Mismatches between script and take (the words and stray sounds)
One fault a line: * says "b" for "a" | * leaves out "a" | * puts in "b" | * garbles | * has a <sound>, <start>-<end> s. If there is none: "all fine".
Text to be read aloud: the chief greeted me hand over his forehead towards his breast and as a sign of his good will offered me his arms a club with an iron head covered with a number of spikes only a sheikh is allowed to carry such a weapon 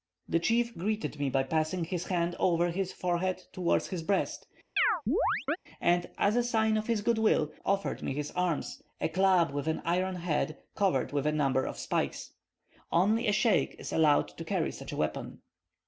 * puts in "by passing his"
* has a chirp, 4.8-5.6 s